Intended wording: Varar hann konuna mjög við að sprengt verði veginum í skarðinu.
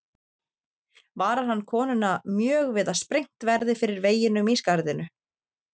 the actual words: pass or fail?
fail